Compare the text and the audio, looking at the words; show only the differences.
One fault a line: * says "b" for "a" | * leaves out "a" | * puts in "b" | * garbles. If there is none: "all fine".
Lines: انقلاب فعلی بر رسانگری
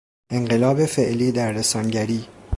* says "در" for "بر"